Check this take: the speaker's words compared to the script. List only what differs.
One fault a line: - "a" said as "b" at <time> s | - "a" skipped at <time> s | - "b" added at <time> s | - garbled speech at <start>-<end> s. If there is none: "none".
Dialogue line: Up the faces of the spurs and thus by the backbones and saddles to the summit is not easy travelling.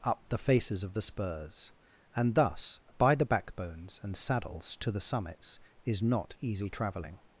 - "summit" said as "summits" at 5.0 s